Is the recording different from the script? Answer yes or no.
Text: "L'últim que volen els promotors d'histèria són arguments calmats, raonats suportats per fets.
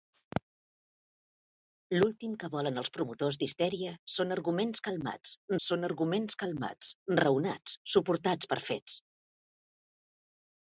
yes